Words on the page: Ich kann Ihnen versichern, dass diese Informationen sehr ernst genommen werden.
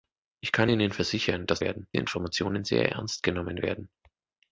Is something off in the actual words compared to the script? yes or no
yes